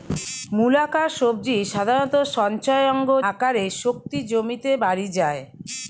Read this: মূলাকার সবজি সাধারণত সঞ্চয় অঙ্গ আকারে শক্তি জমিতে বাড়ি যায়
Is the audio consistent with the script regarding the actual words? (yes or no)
yes